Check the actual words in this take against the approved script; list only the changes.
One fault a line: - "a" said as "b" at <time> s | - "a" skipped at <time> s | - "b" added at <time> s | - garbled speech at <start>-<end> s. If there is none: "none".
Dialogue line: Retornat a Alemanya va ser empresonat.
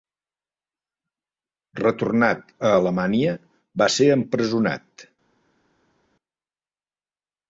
none